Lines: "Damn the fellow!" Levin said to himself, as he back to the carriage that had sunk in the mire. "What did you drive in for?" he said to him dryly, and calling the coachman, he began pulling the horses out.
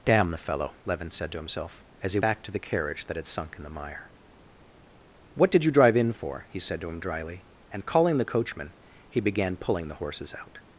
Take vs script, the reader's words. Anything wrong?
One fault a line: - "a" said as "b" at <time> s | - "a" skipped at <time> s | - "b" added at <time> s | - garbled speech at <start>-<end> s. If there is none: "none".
none